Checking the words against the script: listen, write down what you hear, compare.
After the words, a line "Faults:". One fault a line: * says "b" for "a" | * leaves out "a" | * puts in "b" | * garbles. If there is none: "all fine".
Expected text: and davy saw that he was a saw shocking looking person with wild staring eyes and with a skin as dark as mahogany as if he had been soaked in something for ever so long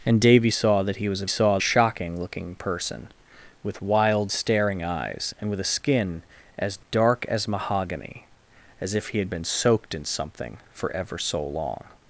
and davy saw that he was a saw shocking looking person with wild staring eyes and with a skin as dark as mahogany as if he had been soaked in something for ever so long
Faults:
all fine